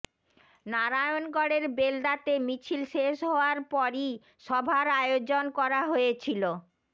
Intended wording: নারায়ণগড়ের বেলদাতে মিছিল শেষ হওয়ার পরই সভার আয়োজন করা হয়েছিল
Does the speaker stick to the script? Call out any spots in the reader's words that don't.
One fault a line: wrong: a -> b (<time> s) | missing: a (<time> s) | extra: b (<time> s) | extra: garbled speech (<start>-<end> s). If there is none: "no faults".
no faults